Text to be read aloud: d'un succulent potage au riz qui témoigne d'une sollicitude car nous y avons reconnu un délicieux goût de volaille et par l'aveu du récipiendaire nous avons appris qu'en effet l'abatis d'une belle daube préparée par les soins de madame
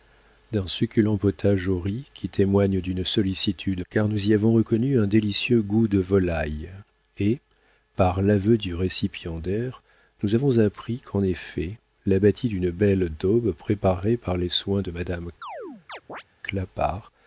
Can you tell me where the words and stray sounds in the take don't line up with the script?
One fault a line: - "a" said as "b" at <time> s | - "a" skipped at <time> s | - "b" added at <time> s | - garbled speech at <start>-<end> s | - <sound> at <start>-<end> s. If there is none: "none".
- chirp at 15.4-16.2 s